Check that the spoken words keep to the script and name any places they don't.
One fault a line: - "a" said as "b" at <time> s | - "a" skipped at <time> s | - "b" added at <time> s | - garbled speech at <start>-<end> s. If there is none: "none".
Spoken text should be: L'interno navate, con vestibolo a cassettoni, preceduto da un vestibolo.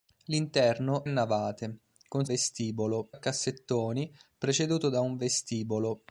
none